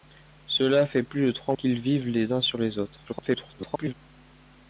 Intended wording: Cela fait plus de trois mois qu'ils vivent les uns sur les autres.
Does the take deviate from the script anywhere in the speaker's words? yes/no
yes